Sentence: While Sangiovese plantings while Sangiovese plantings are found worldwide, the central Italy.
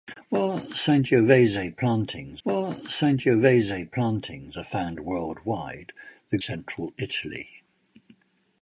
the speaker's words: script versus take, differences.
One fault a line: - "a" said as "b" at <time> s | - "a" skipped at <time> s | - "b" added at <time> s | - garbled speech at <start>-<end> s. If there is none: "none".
none